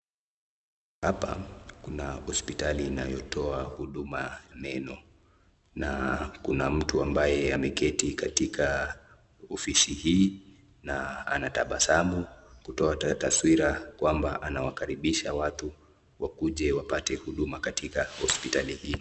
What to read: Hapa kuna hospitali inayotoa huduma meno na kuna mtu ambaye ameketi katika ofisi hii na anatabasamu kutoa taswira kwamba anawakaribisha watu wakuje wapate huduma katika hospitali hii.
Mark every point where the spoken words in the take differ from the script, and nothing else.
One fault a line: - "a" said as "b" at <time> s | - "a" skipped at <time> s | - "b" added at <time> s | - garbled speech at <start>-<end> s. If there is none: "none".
none